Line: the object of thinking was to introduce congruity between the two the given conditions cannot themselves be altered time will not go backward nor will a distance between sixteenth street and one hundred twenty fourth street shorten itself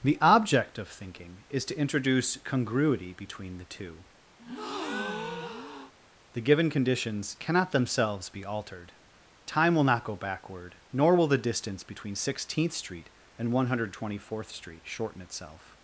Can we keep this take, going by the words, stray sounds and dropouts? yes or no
no